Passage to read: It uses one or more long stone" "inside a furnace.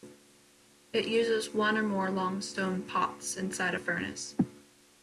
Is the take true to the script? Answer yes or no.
no